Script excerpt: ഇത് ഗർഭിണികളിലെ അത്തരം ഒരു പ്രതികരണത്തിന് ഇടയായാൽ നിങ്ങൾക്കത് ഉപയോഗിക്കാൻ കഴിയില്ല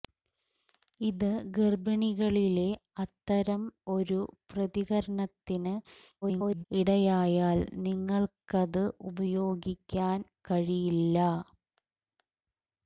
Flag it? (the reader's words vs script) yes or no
yes